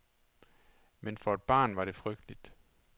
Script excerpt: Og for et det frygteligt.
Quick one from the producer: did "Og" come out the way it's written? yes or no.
no